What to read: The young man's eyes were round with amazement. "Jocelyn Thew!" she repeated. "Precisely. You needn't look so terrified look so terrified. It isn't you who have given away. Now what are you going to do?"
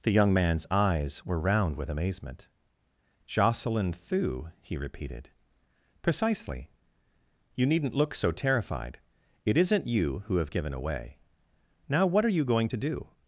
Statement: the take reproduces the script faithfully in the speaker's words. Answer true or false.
false